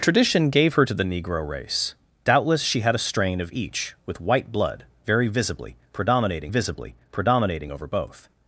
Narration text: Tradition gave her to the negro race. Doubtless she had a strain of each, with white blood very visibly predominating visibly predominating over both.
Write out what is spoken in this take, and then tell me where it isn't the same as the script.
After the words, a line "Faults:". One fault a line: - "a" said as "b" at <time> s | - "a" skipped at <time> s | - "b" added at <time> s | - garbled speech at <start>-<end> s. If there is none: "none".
Tradition gave her to the negro race. Doubtless she had a strain of each, with white blood very visibly predominating visibly predominating over both.
Faults:
none